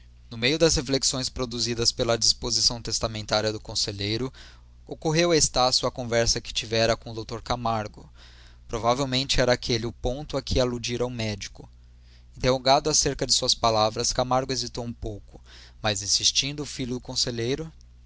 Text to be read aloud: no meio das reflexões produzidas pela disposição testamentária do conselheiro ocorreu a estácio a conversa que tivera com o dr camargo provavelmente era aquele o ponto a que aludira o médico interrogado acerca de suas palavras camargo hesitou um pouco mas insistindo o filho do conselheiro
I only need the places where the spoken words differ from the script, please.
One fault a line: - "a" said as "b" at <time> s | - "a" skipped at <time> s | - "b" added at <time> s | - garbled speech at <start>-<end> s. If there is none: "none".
none